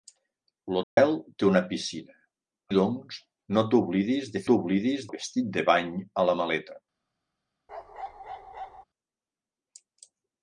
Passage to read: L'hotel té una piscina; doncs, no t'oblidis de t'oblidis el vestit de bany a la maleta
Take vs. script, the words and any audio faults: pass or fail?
fail